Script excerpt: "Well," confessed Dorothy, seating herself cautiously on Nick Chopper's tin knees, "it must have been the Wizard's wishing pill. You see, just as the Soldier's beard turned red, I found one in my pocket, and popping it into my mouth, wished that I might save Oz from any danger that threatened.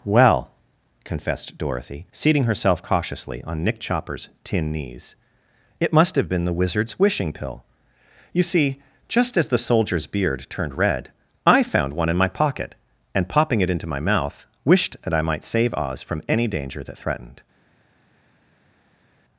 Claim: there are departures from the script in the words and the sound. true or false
false